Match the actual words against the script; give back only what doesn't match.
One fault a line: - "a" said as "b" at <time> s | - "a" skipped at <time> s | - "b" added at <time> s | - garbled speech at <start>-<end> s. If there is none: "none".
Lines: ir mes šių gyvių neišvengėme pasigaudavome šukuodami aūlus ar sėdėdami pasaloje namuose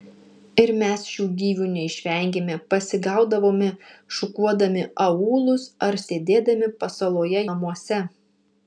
none